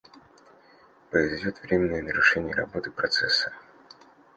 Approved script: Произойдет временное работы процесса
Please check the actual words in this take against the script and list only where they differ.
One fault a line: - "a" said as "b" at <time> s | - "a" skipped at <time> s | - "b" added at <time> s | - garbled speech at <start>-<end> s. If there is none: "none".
- "нарушение" added at 2.0 s